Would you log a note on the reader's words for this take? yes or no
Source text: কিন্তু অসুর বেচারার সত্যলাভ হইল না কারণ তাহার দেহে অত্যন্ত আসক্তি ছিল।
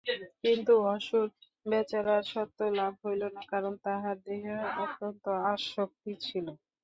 no